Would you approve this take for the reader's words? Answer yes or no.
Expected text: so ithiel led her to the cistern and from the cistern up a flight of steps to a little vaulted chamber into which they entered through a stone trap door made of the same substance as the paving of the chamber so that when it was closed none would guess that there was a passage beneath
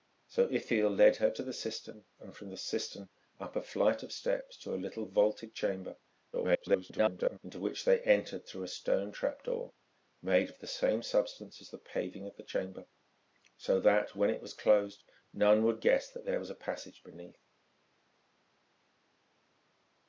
no